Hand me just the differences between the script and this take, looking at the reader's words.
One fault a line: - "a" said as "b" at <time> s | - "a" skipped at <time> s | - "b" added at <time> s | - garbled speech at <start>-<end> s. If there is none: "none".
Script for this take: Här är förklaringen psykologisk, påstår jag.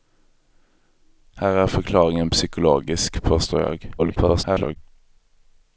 - garbled speech at 4.0-4.8 s